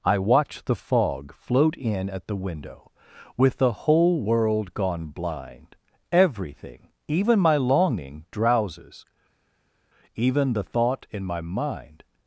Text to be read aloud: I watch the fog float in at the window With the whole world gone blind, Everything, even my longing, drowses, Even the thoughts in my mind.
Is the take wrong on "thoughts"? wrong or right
wrong